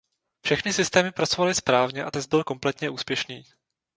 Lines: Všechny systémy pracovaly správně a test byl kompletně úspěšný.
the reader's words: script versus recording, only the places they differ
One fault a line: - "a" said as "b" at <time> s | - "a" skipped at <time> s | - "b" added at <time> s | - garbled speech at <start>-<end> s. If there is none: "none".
none